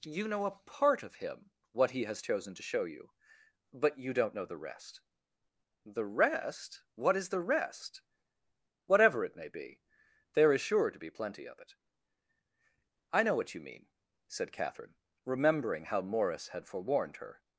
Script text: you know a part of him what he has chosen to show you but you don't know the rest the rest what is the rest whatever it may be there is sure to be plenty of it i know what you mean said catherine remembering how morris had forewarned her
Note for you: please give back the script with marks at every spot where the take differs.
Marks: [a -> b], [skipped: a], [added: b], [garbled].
you know a part of him what he has chosen to show you but you don't know the rest the rest what is the rest whatever it may be there is sure to be plenty of it i know what you mean said catherine remembering how morris had forewarned her